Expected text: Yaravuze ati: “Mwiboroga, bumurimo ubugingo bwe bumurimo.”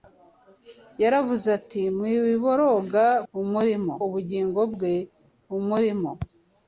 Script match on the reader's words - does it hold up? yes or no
yes